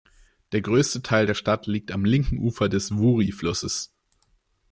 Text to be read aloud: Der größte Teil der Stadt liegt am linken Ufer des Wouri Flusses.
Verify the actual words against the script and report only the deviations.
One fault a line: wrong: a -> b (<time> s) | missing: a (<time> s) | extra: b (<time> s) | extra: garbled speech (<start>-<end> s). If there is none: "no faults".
no faults